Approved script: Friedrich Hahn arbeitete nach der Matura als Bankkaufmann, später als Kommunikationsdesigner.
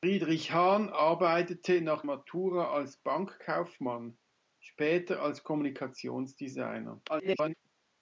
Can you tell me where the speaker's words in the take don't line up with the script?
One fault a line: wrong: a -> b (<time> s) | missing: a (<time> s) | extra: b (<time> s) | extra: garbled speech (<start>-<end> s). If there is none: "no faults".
missing: der (2.0 s)
extra: garbled speech (7.1-7.5 s)